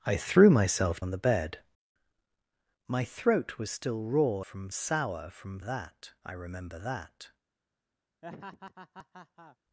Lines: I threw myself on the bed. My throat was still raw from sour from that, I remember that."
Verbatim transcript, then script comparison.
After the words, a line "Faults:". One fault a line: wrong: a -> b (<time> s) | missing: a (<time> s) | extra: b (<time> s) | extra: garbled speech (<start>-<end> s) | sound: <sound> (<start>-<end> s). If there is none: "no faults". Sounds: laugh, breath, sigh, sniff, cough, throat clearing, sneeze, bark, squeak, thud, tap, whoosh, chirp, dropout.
I threw myself on the bed. My throat was still raw from sour from that, I remember that."
Faults:
sound: laugh (8.2-9.6 s)